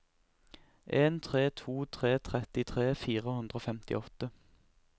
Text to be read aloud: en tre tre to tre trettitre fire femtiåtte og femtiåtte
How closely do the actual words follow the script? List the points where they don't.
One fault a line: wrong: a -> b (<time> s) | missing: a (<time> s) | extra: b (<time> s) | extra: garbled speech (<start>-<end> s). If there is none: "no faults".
missing: tre (1.5 s)
wrong: femtiåtte -> hundre (3.4 s)